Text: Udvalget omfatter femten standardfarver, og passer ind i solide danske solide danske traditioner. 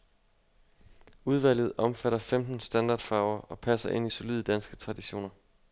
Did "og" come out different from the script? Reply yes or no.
no